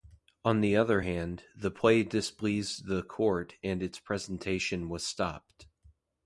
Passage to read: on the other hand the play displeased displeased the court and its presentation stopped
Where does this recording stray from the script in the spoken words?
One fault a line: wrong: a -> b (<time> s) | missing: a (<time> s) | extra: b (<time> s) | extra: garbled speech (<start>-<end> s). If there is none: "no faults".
missing: displeased (2.9 s)
extra: was (4.9 s)